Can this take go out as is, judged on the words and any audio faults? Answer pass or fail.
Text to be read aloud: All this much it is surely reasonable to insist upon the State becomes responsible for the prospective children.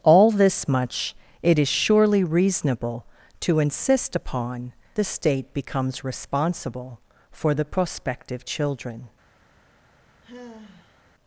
fail